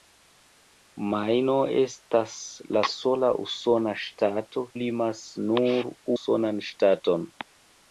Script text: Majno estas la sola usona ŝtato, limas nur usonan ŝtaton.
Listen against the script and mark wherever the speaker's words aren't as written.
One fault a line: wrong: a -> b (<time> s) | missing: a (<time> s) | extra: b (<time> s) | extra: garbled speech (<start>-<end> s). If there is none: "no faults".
no faults